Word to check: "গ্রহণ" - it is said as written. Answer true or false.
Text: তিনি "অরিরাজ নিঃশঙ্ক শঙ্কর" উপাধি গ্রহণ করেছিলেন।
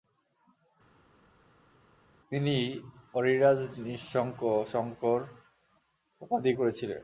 false